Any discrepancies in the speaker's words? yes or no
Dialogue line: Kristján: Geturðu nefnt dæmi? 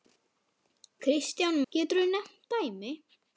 no